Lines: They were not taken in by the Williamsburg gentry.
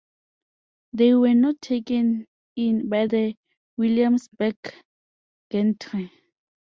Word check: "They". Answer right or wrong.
right